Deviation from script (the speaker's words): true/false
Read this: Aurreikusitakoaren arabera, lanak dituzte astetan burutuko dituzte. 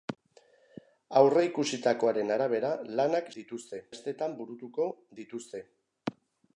false